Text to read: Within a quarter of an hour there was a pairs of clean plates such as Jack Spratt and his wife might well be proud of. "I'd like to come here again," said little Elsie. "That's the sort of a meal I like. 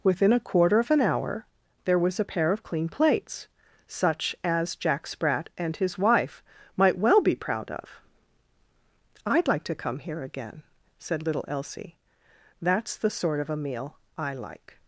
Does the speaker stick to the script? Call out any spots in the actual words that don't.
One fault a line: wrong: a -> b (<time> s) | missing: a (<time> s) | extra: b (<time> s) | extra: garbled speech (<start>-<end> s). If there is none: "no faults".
wrong: pairs -> pair (2.2 s)